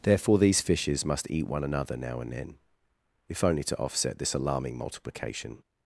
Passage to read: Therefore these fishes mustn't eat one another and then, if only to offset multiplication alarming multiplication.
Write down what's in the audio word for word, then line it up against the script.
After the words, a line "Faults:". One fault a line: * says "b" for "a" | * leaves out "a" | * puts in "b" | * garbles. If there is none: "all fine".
Therefore these fishes must eat one another now and then, if only to offset this alarming multiplication.
Faults:
* says "must" for "mustn't"
* puts in "now"
* says "this" for "multiplication"